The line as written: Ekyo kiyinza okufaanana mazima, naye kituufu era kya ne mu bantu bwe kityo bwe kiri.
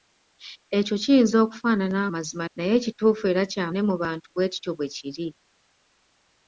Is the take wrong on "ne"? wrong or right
right